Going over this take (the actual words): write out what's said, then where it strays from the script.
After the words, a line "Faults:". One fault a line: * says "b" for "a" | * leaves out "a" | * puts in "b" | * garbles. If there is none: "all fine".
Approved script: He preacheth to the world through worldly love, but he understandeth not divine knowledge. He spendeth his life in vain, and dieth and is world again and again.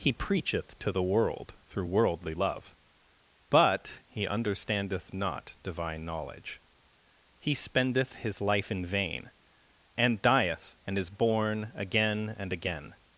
He preacheth to the world through worldly love, but he understandeth not divine knowledge. He spendeth his life in vain, and dieth and is born again and again.
Faults:
* says "born" for "world"